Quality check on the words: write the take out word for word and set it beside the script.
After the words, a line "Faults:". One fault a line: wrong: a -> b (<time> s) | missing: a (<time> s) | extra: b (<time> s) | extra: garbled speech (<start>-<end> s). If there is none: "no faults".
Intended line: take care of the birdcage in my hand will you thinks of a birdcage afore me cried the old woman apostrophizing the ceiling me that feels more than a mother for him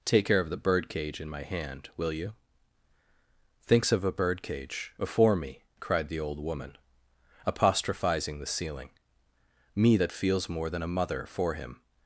take care of the birdcage in my hand will you thinks of a birdcage afore me cried the old woman apostrophizing the ceiling me that feels more than a mother for him
Faults:
no faults